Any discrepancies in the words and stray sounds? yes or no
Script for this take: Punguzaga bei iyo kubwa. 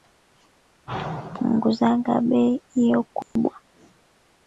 yes